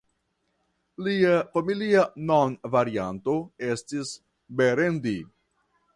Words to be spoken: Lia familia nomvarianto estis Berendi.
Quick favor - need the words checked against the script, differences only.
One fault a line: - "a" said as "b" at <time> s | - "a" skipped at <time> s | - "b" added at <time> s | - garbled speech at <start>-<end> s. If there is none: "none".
none